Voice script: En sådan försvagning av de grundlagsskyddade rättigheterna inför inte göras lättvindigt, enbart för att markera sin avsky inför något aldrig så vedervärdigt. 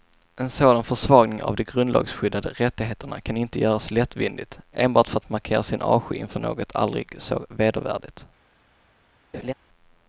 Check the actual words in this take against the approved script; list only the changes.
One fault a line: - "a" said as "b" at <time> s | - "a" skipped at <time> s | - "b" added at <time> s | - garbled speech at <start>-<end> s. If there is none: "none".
- "inför" said as "kan" at 3.2 s